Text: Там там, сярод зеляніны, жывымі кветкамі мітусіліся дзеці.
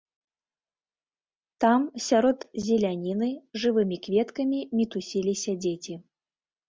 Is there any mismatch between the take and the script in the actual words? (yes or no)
yes